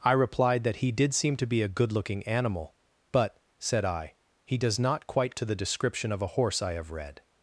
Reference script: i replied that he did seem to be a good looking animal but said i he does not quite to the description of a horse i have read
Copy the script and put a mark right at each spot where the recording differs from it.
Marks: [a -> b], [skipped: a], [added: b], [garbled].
i replied that he did seem to be a good looking animal but said i he does not quite to the description of a horse i have read